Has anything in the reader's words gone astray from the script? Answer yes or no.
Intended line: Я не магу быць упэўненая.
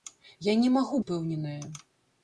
yes